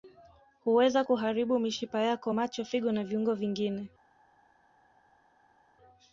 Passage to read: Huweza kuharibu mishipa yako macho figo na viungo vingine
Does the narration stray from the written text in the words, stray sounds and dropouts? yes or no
no